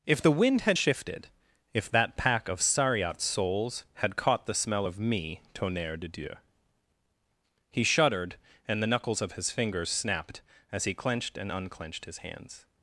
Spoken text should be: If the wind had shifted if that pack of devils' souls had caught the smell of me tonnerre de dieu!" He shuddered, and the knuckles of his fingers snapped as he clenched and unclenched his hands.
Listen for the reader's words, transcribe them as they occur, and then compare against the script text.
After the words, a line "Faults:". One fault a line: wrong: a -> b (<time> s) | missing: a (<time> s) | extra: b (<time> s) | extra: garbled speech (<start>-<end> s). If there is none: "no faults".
If the wind had shifted if that pack of sariat' souls had caught the smell of me tonnerre de dieu!" He shuddered, and the knuckles of his fingers snapped as he clenched and unclenched his hands.
Faults:
wrong: devils -> sariat (2.6 s)